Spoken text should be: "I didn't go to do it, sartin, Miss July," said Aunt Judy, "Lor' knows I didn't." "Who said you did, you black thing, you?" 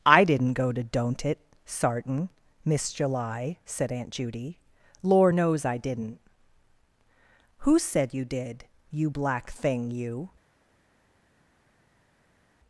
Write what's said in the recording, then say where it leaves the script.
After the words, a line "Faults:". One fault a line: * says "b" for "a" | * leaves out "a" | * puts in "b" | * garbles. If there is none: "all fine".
"I didn't go to don't it, sartin, Miss July," said Aunt Judy, "Lor' knows I didn't." "Who said you did, you black thing, you?"
Faults:
* says "don't" for "do"